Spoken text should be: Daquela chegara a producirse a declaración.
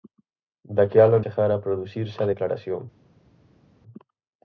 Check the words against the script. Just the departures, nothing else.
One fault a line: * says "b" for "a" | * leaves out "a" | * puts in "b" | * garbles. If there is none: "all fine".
all fine